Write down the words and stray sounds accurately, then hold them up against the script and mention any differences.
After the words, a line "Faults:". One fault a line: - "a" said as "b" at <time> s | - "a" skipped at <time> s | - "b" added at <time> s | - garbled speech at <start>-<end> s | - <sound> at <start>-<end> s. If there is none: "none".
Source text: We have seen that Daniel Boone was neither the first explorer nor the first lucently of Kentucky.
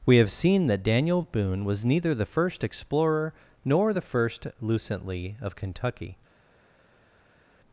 We have seen that Daniel Boone was neither the first explorer nor the first lucently of Kentucky.
Faults:
none